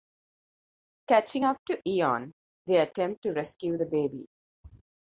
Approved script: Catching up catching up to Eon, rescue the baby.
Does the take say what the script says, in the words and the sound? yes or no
no